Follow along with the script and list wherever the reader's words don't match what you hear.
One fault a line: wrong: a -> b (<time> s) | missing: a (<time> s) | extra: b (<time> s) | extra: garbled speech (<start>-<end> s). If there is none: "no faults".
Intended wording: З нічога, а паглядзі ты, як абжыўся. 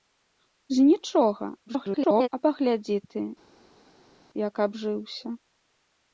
extra: garbled speech (1.7-2.3 s)